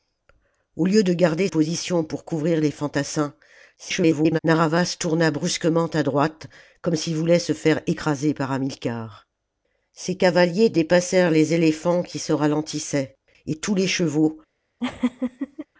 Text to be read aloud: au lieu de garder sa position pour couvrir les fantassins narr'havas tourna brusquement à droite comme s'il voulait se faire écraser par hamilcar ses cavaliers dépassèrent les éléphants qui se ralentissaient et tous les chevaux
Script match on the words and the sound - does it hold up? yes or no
no